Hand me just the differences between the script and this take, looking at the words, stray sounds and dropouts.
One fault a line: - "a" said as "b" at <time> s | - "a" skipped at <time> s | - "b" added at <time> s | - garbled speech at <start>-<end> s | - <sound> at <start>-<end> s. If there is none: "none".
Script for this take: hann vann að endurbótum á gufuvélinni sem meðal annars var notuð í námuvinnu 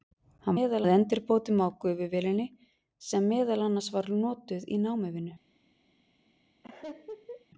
- "vann" said as "meðal" at 0.6 s
- laugh at 6.6-7.5 s